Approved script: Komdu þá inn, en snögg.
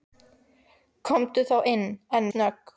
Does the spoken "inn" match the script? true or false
true